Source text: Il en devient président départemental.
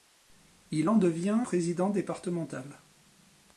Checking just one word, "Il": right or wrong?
right